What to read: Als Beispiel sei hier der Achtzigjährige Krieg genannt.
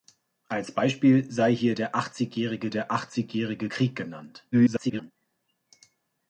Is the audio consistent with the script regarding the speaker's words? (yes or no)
no